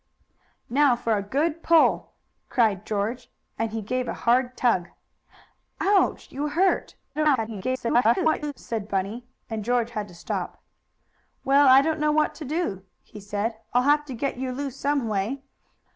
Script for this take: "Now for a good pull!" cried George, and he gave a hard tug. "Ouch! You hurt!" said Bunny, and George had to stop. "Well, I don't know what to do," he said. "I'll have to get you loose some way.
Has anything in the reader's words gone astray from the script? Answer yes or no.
yes